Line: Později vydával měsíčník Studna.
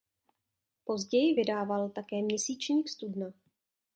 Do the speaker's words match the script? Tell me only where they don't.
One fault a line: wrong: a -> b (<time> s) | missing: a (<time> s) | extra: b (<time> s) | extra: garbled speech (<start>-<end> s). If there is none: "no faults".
extra: také (1.9 s)